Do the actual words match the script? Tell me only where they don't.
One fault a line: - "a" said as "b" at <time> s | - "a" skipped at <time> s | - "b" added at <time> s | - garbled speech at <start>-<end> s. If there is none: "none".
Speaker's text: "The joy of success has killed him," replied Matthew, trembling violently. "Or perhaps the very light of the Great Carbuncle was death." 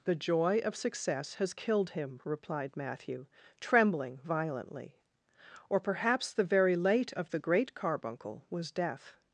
- "light" said as "late" at 6.8 s